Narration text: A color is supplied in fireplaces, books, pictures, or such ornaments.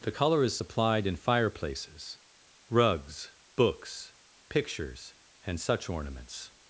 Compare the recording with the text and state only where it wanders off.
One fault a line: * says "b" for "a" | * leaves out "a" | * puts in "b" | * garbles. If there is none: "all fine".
* says "The" for "A"
* puts in "rugs"
* says "and" for "or"